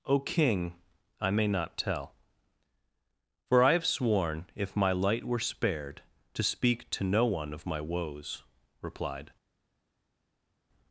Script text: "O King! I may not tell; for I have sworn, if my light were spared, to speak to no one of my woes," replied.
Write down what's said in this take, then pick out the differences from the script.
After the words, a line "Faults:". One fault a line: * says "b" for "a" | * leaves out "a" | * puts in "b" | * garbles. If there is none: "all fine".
"O King! I may not tell; for I have sworn, if my light were spared, to speak to no one of my woes," replied.
Faults:
all fine